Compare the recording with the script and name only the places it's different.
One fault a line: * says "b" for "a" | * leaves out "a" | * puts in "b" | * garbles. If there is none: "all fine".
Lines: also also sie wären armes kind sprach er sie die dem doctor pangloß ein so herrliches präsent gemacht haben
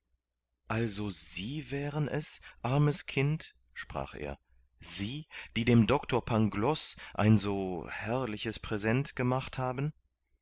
* leaves out "also"
* puts in "es"